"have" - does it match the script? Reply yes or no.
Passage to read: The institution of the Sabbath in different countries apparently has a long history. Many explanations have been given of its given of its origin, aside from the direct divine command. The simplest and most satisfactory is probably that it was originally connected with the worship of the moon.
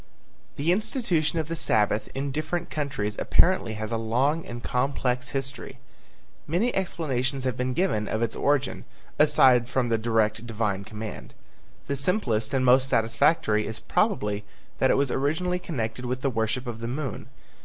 yes